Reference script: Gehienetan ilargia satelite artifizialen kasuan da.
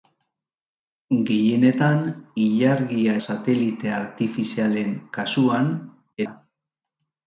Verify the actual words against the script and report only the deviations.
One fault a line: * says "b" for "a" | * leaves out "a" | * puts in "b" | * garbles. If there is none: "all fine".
all fine